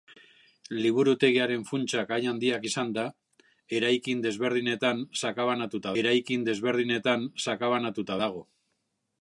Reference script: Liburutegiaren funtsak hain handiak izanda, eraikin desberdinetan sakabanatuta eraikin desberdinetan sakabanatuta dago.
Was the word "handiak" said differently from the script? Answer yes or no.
no